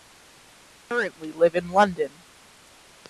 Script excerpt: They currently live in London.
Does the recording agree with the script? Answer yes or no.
yes